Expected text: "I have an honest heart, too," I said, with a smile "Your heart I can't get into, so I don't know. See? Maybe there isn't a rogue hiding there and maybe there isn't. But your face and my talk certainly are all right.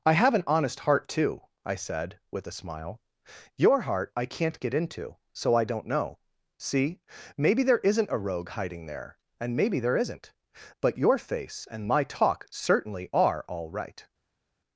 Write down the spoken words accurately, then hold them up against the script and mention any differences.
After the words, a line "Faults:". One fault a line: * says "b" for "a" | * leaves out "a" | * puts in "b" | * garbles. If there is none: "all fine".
"I have an honest heart, too," I said, with a smile "Your heart I can't get into, so I don't know. See? Maybe there isn't a rogue hiding there and maybe there isn't. But your face and my talk certainly are all right.
Faults:
all fine